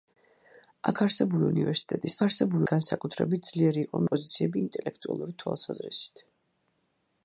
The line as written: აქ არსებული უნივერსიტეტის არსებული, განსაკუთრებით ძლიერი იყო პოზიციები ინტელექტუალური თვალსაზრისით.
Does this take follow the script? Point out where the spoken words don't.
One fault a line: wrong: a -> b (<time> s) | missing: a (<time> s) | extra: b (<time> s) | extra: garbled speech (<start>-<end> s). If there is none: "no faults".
no faults